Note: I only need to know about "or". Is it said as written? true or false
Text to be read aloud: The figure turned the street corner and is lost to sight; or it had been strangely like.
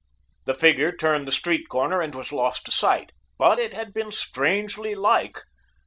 false